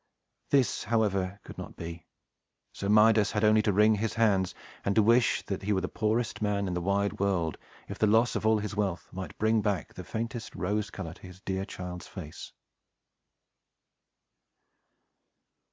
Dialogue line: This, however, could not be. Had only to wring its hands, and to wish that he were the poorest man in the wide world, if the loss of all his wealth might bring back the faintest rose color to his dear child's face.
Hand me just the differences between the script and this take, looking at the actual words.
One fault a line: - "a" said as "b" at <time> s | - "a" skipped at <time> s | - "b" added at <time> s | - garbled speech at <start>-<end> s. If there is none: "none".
- "So Midas" added at 2.7 s
- "its" said as "his" at 4.0 s